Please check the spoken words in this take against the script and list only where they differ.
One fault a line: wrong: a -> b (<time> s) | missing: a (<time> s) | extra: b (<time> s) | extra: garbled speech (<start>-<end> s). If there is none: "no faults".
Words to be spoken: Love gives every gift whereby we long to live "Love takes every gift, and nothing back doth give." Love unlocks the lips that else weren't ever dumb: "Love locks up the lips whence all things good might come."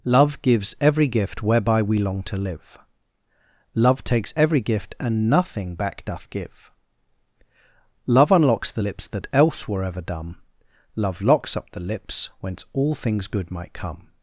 wrong: weren't -> were (9.7 s)